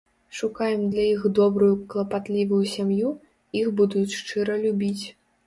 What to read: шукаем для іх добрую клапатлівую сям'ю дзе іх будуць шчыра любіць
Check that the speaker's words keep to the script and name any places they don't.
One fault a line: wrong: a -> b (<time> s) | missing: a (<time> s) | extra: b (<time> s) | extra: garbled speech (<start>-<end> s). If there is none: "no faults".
missing: дзе (3.1 s)